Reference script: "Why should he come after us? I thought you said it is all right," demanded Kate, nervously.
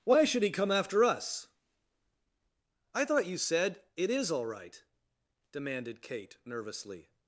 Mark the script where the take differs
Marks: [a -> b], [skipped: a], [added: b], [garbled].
"Why should he come after us? I thought you said it is all right," demanded Kate, nervously.